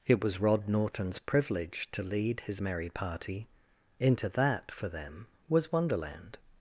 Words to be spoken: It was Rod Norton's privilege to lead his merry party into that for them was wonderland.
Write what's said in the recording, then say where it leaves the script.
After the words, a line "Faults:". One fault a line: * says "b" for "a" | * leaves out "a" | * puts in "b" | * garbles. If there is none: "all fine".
It was Rod Norton's privilege to lead his merry party into that for them was wonderland.
Faults:
all fine